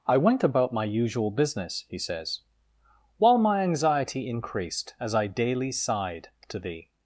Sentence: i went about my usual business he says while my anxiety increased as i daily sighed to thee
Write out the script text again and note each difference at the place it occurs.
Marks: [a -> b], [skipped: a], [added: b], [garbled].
i went about my usual business he says while my anxiety increased as i daily sighed to thee